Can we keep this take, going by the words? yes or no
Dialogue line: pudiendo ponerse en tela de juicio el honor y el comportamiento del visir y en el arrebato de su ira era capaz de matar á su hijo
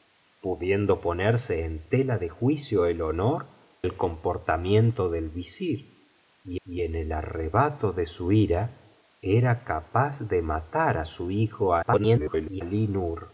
no